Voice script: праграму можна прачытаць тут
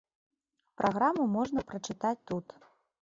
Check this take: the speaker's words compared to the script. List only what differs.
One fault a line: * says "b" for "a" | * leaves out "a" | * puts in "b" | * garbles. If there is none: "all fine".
all fine